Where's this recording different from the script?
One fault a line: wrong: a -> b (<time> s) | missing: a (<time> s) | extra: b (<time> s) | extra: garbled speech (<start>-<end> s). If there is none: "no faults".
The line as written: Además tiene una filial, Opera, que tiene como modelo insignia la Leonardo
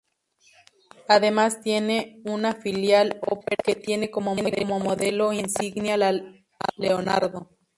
no faults